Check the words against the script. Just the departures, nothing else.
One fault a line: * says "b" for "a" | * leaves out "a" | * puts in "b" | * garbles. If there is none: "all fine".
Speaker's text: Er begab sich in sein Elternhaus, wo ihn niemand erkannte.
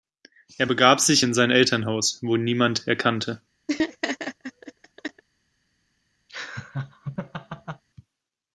all fine